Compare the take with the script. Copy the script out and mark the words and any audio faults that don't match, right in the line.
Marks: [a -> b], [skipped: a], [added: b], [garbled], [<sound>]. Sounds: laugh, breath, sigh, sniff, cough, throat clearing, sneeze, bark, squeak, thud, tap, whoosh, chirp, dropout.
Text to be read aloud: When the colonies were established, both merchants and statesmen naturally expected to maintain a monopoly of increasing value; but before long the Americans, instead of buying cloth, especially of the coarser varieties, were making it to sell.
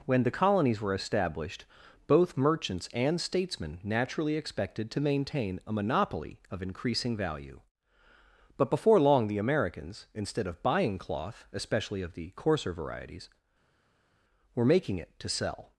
When the colonies were established, both merchants and statesmen naturally expected to maintain a monopoly of increasing value; but before long the Americans, instead of buying cloth, especially of the coarser varieties, were making it to sell.